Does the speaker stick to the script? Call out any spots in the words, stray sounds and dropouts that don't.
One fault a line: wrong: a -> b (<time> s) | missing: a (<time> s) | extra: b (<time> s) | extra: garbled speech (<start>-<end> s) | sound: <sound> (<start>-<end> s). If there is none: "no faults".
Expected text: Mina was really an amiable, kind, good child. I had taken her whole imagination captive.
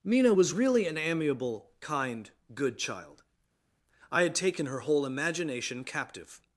no faults